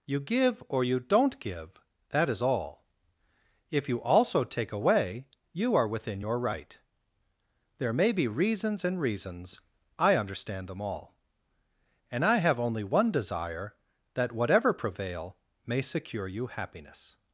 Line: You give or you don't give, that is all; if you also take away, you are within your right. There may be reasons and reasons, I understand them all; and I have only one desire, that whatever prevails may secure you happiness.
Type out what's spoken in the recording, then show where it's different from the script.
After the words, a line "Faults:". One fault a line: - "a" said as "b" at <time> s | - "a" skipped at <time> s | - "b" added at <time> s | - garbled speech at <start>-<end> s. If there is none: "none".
You give or you don't give, that is all; if you also take away, you are within your right. There may be reasons and reasons, I understand them all; and I have only one desire, that whatever prevail may secure you happiness.
Faults:
- "prevails" said as "prevail" at 14.7 s